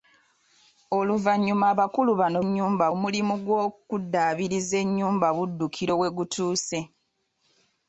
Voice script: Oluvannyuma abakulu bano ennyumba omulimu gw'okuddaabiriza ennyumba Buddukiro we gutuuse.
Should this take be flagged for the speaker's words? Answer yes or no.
no